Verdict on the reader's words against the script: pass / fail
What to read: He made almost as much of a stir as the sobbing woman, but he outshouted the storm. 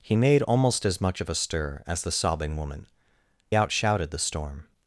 fail